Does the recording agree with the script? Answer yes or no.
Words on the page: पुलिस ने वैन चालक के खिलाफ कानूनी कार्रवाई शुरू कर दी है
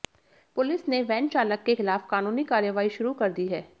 yes